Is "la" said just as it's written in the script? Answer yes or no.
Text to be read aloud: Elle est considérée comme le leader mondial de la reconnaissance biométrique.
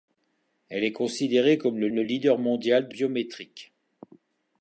no